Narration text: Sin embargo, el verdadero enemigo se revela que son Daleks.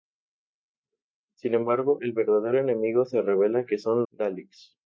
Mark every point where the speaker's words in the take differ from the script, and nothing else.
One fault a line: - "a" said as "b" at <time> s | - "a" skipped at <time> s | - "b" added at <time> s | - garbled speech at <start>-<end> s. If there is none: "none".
none